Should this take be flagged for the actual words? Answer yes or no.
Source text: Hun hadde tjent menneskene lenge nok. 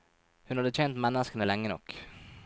no